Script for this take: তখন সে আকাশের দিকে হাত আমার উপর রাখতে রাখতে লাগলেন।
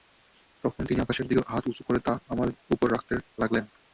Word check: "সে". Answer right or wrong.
wrong